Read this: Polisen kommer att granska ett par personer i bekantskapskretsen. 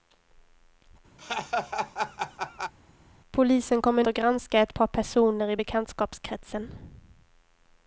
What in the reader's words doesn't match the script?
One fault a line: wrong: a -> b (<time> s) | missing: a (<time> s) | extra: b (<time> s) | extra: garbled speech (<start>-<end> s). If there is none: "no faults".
no faults